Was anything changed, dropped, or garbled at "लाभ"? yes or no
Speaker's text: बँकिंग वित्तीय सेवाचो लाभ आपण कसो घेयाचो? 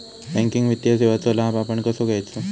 no